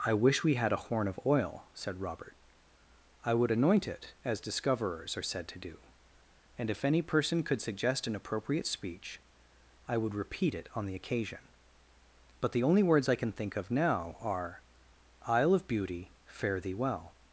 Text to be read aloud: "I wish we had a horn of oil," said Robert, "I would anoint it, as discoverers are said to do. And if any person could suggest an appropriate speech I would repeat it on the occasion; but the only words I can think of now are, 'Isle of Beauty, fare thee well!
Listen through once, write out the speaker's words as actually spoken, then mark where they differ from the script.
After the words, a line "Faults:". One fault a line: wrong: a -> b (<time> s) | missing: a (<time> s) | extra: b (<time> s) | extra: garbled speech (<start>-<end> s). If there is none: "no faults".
"I wish we had a horn of oil," said Robert, "I would anoint it, as discoverers are said to do. And if any person could suggest an appropriate speech I would repeat it on the occasion; but the only words I can think of now are, 'Isle of Beauty, fare thee well!
Faults:
no faults